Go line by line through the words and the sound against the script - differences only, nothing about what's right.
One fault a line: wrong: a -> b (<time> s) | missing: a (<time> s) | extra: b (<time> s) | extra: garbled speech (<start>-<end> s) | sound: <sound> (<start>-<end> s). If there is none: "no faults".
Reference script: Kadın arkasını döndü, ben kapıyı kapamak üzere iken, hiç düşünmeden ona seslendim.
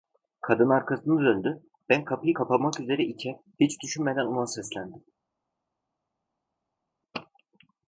no faults